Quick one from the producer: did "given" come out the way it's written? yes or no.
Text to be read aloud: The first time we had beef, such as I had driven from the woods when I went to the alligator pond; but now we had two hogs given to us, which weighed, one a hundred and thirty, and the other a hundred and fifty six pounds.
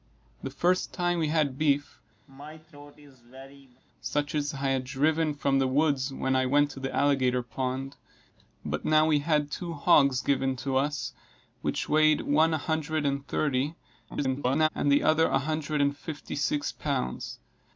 yes